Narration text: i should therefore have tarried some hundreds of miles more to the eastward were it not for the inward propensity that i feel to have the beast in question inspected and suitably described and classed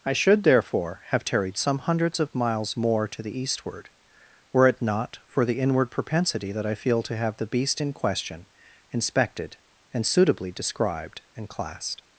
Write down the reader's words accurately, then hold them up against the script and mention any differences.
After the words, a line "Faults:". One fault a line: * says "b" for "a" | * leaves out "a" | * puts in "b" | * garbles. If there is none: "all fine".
i should therefore have tarried some hundreds of miles more to the eastward were it not for the inward propensity that i feel to have the beast in question inspected and suitably described and classed
Faults:
all fine